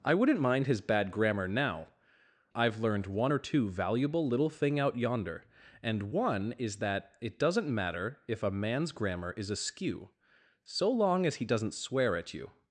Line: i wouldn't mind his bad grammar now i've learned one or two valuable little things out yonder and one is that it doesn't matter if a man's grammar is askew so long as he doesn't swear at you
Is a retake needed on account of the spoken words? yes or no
yes